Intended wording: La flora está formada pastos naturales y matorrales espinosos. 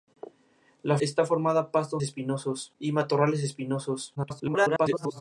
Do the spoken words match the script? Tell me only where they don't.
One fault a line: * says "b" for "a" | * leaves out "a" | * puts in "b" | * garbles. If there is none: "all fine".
* leaves out "flora"
* says "espinosos" for "naturales"
* garbles